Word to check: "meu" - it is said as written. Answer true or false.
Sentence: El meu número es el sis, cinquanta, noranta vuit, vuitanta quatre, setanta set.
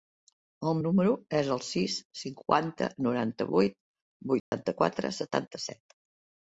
false